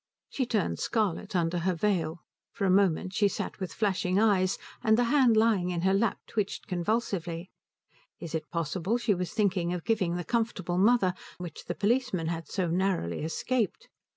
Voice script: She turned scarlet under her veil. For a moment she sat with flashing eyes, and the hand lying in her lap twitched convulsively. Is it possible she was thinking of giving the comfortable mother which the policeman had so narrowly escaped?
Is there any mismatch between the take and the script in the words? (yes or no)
no